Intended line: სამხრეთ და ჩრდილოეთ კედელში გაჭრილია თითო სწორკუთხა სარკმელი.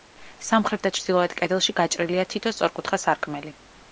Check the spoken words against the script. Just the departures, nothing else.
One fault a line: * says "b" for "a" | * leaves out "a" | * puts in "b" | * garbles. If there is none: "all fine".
all fine